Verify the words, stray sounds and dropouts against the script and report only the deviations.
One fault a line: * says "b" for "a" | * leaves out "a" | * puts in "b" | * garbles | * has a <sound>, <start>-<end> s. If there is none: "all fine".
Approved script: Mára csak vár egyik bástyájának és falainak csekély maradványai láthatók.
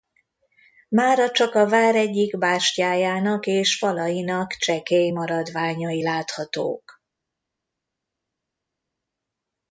* puts in "a"